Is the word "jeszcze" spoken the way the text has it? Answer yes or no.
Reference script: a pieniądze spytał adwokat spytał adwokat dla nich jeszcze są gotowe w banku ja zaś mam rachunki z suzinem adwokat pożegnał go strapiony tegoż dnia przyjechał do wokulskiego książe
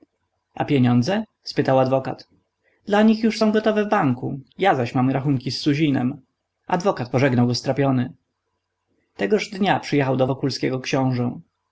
no